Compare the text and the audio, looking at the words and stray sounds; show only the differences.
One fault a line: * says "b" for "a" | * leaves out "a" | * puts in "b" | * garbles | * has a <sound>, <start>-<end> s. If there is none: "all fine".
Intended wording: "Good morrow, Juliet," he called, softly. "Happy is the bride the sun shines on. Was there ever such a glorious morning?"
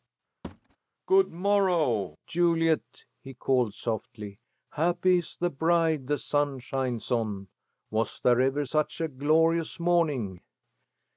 * has a thud, 0.4-0.8 s